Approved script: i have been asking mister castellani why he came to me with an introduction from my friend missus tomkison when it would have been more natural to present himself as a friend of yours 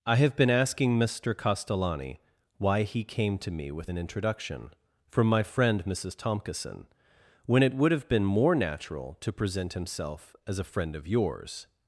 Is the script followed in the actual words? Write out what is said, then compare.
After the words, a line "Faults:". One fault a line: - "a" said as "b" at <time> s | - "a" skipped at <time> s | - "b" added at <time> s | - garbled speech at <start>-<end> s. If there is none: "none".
i have been asking mister castellani why he came to me with an introduction from my friend missus tomkison when it would have been more natural to present himself as a friend of yours
Faults:
none